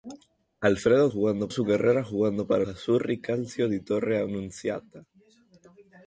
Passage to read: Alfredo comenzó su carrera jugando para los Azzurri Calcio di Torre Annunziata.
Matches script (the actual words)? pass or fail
fail